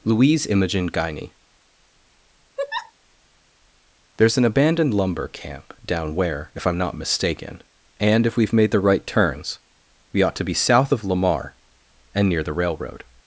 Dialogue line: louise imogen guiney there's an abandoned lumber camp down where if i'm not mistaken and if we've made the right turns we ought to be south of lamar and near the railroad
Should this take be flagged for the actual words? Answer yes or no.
no